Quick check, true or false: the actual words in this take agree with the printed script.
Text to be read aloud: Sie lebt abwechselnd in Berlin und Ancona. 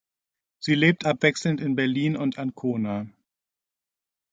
true